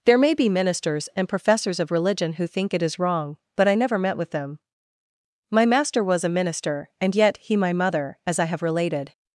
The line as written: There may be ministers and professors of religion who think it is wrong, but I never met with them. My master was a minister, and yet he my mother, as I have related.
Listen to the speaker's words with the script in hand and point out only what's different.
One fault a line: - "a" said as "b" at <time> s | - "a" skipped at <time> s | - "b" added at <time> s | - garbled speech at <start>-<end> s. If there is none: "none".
none